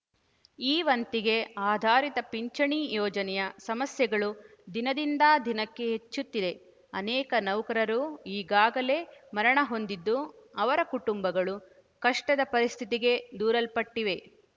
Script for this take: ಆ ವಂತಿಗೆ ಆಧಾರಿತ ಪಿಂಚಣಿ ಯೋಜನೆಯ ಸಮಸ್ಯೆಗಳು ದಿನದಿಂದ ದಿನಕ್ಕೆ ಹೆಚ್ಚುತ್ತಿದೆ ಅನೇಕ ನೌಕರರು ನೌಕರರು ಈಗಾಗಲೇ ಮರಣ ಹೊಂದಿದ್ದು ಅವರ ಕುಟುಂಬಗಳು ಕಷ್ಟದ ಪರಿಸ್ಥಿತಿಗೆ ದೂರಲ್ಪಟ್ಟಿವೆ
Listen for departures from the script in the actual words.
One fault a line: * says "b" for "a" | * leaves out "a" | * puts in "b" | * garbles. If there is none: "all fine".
* says "ಈ" for "ಆ"
* leaves out "ನೌಕರರು"